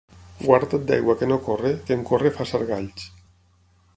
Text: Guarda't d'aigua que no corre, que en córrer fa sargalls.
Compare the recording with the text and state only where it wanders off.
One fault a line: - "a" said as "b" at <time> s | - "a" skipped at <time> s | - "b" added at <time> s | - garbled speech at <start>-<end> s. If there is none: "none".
none